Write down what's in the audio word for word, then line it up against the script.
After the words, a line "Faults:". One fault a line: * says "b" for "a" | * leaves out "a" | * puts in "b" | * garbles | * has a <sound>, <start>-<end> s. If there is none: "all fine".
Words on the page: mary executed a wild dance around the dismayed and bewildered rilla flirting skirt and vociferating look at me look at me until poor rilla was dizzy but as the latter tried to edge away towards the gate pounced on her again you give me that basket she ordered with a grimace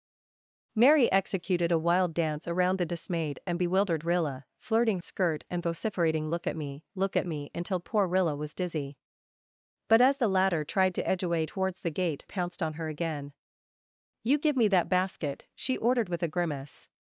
mary executed a wild dance around the dismayed and bewildered rilla flirting skirt and vociferating look at me look at me until poor rilla was dizzy but as the latter tried to edge away towards the gate pounced on her again you give me that basket she ordered with a grimace
Faults:
all fine